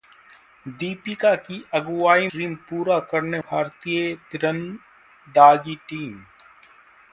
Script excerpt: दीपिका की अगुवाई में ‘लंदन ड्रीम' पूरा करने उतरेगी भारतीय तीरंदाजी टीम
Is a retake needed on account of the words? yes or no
yes